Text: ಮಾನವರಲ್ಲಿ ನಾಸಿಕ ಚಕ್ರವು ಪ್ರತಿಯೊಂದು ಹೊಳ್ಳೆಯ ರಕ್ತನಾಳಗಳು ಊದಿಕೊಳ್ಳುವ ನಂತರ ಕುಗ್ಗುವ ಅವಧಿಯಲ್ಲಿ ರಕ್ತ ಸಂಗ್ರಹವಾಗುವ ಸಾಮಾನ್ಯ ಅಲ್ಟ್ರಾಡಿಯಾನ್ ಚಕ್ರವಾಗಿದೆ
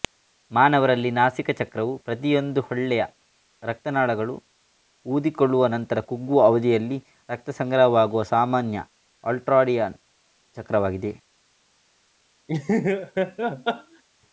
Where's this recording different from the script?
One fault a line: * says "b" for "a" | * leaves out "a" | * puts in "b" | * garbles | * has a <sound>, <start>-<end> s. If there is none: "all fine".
* has a laugh, 12.5-14.0 s